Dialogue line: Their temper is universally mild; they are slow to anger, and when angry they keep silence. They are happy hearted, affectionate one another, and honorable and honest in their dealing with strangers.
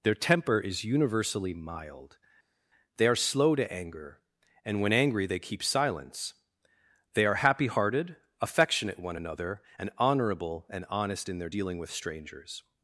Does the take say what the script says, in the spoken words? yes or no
yes